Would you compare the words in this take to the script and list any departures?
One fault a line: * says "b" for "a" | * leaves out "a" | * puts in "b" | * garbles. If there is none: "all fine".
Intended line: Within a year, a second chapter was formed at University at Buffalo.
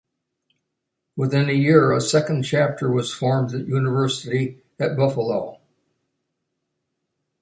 all fine